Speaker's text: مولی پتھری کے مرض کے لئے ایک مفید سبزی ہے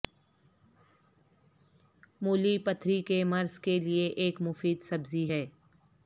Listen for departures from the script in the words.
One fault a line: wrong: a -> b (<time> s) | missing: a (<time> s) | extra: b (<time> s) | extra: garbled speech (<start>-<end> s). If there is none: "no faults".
no faults